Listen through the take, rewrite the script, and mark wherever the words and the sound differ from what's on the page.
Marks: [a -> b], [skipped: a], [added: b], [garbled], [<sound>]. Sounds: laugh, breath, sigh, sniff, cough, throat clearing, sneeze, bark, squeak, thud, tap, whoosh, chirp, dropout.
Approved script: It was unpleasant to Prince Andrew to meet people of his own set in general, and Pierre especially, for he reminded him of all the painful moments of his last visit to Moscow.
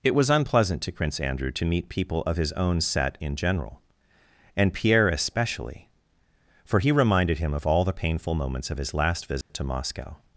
It was unpleasant to Prince Andrew to meet people of his own set in general, and Pierre especially, for he reminded him of all the painful moments of his last visit [dropout] to Moscow.